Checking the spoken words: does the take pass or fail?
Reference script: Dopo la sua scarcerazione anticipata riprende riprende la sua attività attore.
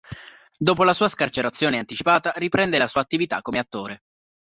fail